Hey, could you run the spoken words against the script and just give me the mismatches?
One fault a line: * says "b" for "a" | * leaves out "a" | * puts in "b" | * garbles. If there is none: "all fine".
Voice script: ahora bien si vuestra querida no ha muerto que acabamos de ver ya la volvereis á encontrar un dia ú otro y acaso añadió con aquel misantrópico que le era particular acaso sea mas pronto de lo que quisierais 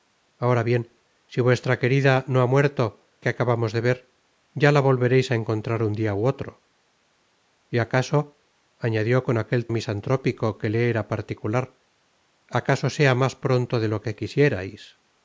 all fine